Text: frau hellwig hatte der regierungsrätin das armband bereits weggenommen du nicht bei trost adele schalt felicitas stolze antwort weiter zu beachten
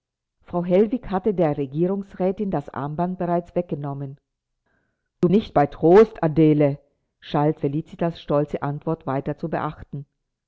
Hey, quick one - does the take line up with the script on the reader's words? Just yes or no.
yes